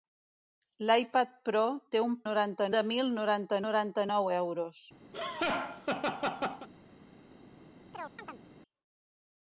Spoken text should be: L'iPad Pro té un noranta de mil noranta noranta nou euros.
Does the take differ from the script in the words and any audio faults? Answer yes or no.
yes